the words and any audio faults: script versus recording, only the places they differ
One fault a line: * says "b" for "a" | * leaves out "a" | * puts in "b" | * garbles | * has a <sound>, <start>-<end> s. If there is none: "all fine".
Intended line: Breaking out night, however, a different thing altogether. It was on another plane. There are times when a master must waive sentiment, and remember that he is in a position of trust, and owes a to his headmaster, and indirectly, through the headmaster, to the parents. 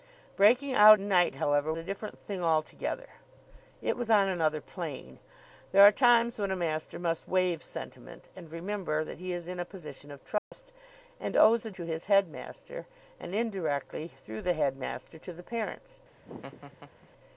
* has a dropout, 10.4-10.5 s
* has a laugh, 16.1-17.1 s